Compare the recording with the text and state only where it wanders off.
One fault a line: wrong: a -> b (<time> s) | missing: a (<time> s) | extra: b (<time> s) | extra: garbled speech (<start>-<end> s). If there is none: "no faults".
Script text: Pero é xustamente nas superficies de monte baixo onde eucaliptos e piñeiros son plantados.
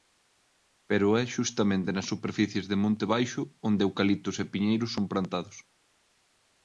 no faults